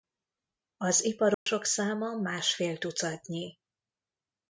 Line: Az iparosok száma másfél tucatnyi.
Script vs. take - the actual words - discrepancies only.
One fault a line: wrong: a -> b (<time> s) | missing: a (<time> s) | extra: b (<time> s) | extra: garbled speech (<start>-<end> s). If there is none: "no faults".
no faults